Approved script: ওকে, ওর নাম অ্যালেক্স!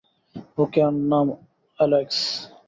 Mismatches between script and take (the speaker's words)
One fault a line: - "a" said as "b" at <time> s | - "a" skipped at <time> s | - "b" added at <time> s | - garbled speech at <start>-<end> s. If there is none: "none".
none